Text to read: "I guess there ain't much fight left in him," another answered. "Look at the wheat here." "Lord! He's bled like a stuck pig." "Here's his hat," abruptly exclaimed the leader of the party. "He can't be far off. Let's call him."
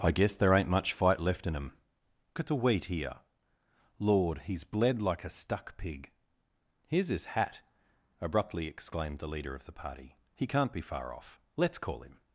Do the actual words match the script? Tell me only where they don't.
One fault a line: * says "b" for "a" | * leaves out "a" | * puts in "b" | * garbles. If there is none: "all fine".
* leaves out "another answered Look"